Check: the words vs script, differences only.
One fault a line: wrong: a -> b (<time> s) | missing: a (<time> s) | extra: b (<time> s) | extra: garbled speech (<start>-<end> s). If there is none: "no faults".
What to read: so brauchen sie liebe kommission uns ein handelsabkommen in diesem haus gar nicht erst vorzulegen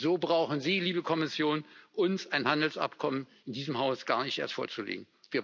no faults